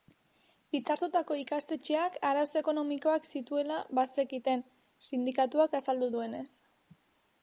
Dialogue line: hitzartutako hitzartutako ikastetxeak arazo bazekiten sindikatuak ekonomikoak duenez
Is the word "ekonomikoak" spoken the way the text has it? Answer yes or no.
no